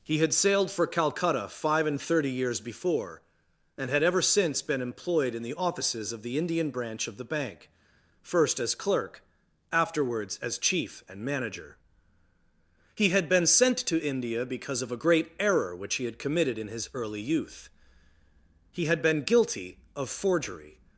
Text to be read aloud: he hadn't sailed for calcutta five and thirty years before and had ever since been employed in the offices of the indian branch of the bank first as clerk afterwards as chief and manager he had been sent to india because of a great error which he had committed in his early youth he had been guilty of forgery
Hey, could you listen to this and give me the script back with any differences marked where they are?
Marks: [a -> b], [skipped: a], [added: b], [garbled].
he [hadn't -> had] sailed for calcutta five and thirty years before and had ever since been employed in the offices of the indian branch of the bank first as clerk afterwards as chief and manager he had been sent to india because of a great error which he had committed in his early youth he had been guilty of forgery